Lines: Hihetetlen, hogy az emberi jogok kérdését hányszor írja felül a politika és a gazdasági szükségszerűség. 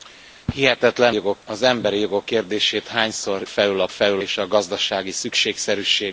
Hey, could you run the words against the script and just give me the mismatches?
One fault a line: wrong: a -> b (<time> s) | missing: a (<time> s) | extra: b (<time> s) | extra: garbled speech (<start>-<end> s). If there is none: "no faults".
wrong: hogy -> jogok (1.1 s)
missing: írja (3.4 s)
wrong: politika -> felül (3.9 s)